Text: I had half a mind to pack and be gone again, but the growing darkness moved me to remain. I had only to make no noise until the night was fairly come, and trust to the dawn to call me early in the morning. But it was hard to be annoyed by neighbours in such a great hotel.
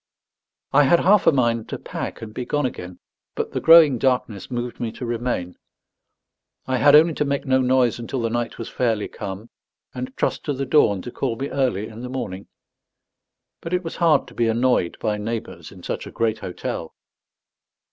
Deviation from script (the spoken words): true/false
false